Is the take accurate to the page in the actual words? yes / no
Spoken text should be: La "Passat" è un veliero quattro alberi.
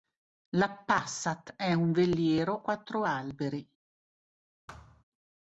yes